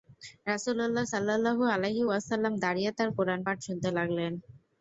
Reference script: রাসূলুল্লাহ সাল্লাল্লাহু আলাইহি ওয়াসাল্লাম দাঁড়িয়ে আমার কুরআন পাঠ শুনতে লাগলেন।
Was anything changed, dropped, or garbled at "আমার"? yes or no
yes